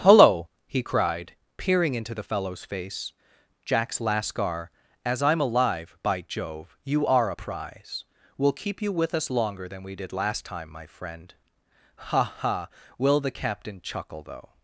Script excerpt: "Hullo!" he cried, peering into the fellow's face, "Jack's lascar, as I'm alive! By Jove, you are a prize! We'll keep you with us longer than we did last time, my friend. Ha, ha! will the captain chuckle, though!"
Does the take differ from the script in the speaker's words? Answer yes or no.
no